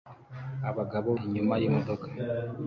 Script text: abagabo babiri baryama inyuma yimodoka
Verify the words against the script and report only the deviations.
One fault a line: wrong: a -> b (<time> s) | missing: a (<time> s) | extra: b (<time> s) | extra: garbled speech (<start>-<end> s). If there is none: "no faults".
missing: babiri baryama (1.1 s)